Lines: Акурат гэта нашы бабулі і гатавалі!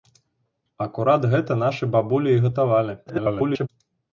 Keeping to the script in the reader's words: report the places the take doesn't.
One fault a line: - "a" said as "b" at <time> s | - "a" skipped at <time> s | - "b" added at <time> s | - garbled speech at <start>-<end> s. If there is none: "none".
- garbled speech at 3.1-3.7 s